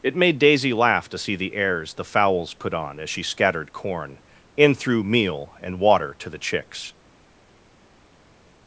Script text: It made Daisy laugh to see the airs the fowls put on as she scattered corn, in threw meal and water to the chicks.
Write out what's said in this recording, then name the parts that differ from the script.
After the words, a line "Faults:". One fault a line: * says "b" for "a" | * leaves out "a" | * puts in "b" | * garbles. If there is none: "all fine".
It made Daisy laugh to see the airs the fowls put on as she scattered corn, in threw meal and water to the chicks.
Faults:
all fine